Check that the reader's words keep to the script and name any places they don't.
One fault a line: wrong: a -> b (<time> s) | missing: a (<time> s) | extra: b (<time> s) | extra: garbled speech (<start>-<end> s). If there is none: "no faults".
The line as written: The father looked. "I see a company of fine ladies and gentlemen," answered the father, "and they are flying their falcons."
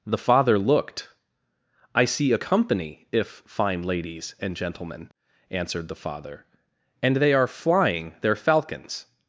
wrong: of -> if (3.1 s)